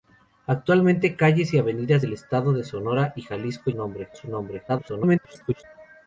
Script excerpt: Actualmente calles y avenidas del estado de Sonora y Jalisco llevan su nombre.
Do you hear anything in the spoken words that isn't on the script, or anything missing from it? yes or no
yes